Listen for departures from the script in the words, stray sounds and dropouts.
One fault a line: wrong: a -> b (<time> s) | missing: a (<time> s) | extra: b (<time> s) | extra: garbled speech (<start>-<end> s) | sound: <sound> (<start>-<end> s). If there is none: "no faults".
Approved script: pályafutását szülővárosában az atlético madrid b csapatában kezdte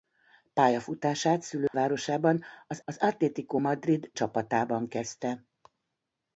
sound: dropout (1.7-1.7 s)
extra: az (2.8 s)
missing: b (4.1 s)